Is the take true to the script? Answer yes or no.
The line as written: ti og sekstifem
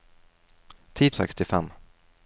yes